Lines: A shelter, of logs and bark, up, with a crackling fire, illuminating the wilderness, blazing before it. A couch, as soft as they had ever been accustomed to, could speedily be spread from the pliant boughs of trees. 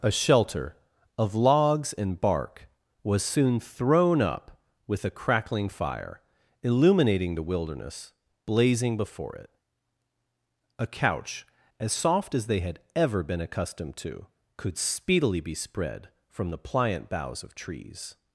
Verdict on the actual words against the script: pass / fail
fail